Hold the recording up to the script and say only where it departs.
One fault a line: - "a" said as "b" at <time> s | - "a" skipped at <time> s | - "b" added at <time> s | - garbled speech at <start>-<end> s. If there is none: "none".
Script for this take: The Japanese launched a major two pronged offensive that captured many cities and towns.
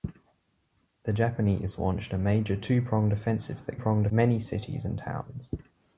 - "captured" said as "pronged" at 3.7 s